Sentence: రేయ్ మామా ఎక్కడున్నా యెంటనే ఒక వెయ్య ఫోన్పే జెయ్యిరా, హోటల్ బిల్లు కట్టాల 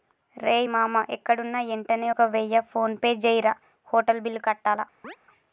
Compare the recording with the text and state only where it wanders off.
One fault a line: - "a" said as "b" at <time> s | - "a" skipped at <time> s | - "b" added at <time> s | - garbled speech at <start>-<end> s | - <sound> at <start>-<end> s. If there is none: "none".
- chirp at 5.0-5.2 s